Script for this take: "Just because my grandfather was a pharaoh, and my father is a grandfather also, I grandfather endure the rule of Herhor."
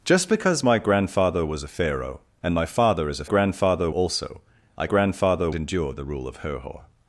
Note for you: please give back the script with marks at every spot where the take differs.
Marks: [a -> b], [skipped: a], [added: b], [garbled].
"Just because my grandfather was a pharaoh, and my father is a grandfather also, I grandfather endure the rule of Herhor."